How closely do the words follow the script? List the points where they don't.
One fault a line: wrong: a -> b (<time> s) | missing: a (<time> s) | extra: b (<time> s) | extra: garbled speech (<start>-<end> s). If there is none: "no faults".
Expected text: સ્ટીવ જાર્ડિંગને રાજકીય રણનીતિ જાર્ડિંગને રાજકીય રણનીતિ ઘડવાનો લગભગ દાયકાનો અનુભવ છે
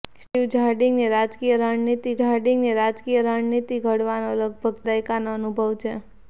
no faults